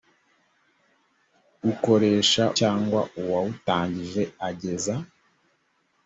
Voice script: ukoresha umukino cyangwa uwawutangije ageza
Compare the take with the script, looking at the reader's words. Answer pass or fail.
fail